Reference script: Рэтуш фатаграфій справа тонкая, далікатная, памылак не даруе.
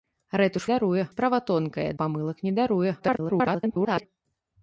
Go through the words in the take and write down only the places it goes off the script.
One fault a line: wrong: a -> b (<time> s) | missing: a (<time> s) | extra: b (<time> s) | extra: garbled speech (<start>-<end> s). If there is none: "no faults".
wrong: фатаграфій -> даруе (0.7 s)
missing: далікатная (1.9 s)
extra: garbled speech (3.0-4.1 s)